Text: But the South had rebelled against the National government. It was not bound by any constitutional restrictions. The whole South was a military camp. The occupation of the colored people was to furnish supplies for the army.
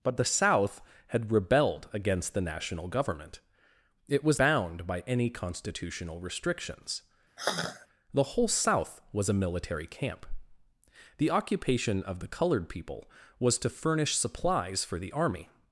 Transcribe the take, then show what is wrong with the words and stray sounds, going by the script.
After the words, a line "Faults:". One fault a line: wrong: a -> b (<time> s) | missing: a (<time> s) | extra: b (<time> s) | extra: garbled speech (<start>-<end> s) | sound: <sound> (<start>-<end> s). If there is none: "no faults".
But the South had rebelled against the National government. It was bound by any constitutional restrictions. The whole South was a military camp. The occupation of the colored people was to furnish supplies for the army.
Faults:
missing: not (4.4 s)
sound: sigh (7.4-7.9 s)